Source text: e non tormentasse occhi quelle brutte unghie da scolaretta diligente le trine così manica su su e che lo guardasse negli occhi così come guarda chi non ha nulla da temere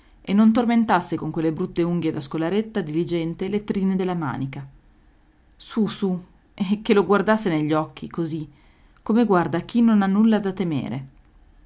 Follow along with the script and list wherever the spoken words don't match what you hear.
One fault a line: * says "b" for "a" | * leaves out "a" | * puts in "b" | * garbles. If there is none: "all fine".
* says "con" for "occhi"
* says "della" for "così"